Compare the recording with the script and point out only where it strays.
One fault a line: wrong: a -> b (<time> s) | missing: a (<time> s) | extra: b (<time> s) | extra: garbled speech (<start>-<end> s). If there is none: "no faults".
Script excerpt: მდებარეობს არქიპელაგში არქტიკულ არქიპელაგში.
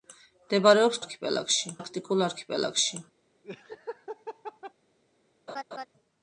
no faults